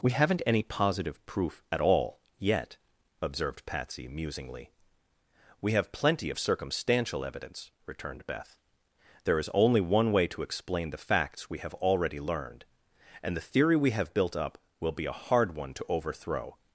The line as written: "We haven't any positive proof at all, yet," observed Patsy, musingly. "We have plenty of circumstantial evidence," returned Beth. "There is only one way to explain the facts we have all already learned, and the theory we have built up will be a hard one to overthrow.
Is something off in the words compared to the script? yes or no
yes